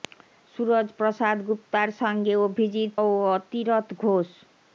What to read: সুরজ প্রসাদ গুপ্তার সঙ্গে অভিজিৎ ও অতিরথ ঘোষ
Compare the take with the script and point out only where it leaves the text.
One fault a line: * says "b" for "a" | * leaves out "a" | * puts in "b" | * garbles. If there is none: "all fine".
all fine